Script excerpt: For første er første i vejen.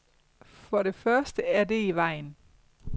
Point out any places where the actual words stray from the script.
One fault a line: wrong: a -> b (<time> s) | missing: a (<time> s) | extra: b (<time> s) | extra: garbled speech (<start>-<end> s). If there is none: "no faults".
extra: det (0.8 s)
wrong: første -> det (1.6 s)